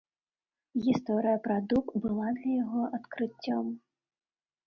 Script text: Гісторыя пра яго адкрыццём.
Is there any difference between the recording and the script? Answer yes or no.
yes